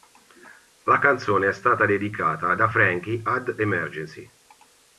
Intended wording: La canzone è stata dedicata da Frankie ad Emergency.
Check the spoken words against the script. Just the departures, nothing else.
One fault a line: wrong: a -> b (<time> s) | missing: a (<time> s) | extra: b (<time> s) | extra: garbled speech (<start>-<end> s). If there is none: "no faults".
no faults